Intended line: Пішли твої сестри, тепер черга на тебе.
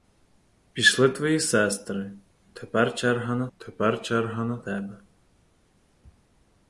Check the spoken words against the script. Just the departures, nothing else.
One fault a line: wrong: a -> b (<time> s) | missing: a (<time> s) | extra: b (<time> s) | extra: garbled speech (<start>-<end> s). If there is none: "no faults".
extra: тепер черга на (3.6 s)